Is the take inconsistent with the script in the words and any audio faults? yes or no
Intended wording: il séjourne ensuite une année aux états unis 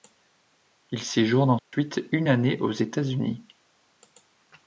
yes